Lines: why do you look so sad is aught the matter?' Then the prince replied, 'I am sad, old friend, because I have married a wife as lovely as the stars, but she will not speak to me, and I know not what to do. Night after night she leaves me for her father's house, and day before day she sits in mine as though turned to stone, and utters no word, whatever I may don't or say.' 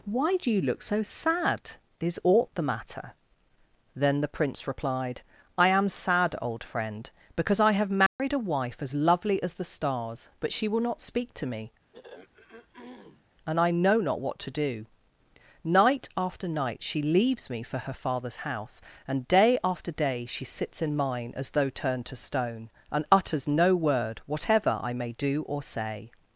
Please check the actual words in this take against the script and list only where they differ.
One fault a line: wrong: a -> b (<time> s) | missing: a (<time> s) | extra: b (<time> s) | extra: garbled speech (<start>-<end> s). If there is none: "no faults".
wrong: before -> after (19.6 s)
wrong: don't -> do (25.1 s)